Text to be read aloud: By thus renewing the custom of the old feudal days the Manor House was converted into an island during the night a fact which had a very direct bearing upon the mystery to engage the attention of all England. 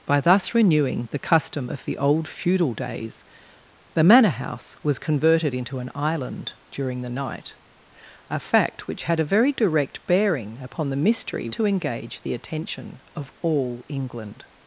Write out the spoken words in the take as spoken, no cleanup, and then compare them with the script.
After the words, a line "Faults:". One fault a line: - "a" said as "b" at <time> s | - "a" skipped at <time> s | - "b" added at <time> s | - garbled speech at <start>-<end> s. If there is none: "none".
By thus renewing the custom of the old feudal days the Manor House was converted into an island during the night a fact which had a very direct bearing upon the mystery to engage the attention of all England.
Faults:
none